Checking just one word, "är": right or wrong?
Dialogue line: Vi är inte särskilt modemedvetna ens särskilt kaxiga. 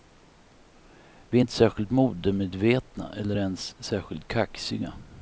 right